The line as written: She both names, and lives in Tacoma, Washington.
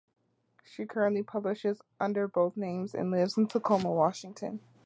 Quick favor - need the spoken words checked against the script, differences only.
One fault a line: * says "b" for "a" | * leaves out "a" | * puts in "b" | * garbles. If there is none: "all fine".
* puts in "currently publishes under"